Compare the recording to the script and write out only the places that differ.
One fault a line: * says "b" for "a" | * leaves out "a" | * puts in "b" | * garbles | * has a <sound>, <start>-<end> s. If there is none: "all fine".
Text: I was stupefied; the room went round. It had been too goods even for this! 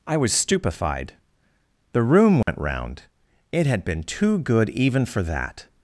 * has a dropout, 2.4-2.5 s
* says "good" for "goods"
* says "that" for "this"